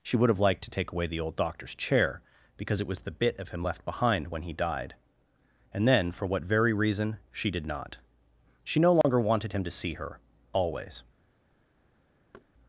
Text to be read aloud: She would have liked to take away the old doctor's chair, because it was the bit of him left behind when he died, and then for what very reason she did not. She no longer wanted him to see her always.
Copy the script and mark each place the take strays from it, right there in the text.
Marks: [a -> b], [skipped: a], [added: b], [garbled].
She would have liked to take away the old doctor's chair, because it was the bit of him left behind when he died, and then for what very reason she did not. She no longer wanted him to see her always.